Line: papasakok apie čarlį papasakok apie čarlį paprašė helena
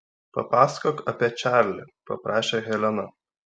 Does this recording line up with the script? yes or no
no